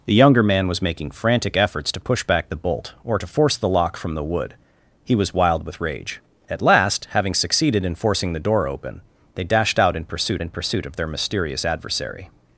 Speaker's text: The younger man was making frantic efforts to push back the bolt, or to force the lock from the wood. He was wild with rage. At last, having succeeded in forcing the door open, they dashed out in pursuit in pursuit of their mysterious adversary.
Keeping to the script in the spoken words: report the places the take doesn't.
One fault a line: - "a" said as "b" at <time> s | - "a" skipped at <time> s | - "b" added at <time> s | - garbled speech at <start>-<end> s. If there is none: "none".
none